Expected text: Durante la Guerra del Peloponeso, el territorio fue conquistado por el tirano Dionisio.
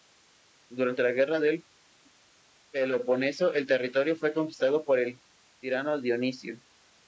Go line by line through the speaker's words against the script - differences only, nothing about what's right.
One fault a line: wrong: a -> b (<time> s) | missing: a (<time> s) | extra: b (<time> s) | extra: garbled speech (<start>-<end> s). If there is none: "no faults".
no faults